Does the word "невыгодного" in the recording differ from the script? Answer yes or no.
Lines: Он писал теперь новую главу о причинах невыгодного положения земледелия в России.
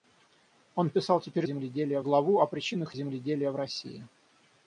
yes